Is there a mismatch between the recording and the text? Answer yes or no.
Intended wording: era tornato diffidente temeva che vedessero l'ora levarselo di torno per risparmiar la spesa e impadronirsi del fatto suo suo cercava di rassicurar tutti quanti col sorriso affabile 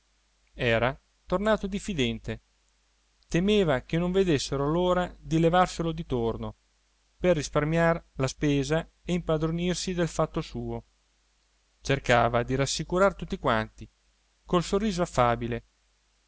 yes